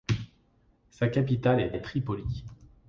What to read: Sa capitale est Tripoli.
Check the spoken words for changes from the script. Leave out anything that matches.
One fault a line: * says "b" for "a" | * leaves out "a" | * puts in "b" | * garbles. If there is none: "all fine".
* puts in "est"